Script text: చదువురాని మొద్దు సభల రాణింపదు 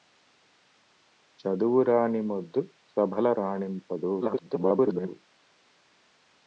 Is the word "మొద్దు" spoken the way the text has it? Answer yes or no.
yes